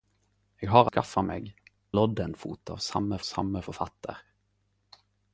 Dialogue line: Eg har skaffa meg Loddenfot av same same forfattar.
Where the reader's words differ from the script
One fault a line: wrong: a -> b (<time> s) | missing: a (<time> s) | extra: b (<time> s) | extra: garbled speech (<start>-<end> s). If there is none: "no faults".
no faults